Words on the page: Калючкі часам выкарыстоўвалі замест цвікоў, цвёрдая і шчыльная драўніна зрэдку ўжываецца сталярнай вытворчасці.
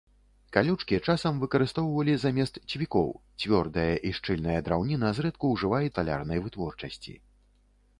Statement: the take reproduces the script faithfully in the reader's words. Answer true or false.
true